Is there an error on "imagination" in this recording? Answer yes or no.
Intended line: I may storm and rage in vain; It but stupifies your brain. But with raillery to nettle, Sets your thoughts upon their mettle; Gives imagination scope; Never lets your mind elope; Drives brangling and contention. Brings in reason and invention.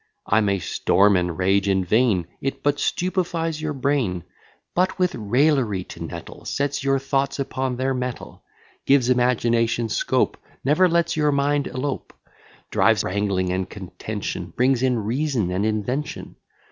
no